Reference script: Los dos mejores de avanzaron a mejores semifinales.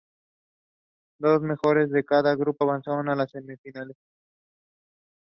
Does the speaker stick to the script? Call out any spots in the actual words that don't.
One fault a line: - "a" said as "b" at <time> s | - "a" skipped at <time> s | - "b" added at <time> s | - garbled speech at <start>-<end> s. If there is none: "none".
- "cada grupo" added at 2.0 s
- "mejores" said as "las" at 3.1 s